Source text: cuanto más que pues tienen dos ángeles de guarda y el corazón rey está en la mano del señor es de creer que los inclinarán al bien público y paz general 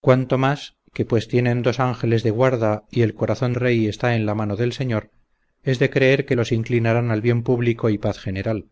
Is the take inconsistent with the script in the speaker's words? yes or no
no